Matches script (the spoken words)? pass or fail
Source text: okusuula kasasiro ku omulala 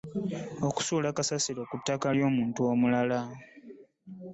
fail